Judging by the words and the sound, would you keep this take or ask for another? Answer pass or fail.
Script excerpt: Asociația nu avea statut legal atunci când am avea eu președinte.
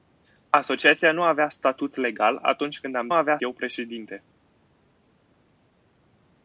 pass